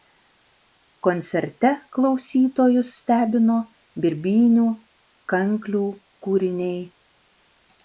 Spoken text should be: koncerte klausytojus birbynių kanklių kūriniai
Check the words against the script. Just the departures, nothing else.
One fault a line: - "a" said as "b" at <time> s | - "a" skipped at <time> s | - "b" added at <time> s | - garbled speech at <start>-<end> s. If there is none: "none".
- "stebino" added at 3.0 s